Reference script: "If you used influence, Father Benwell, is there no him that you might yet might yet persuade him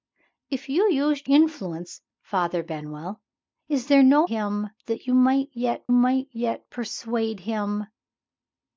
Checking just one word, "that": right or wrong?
right